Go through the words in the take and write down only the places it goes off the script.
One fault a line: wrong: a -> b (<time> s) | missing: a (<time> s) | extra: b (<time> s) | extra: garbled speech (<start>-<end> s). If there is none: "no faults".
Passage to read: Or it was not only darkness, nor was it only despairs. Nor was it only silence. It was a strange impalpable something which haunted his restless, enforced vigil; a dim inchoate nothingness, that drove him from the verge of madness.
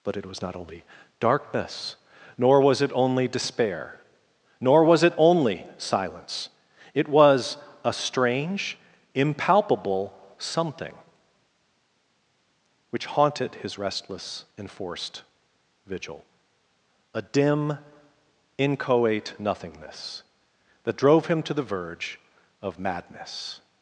wrong: Or -> But (0.0 s)
wrong: despairs -> despair (3.3 s)
wrong: from -> to (21.4 s)